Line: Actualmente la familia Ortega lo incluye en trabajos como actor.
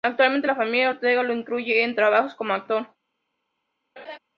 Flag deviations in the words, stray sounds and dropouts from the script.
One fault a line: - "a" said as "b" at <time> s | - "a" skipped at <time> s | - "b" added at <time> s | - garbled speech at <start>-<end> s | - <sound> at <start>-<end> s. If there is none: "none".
- laugh at 4.0-4.2 s